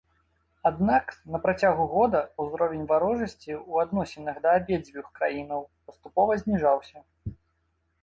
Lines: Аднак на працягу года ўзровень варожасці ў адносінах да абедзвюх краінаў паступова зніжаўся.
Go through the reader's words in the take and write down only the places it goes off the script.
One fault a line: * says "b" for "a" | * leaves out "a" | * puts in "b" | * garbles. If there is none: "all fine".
all fine